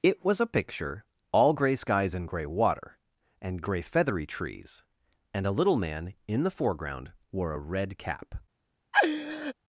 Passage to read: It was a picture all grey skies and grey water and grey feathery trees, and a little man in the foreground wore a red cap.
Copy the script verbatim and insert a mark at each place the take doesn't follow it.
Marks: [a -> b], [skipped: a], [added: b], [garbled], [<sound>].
It was a picture all grey skies and grey water and grey feathery trees, and a little man in the foreground wore a red cap. [laugh]